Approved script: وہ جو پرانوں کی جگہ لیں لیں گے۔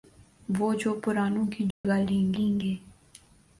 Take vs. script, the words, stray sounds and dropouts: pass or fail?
fail